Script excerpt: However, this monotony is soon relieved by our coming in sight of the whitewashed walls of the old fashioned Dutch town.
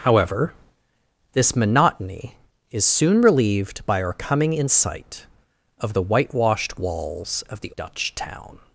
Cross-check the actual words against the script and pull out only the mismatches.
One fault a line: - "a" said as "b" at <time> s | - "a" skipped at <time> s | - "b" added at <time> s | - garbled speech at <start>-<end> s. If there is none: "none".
- "old fashioned" skipped at 7.7 s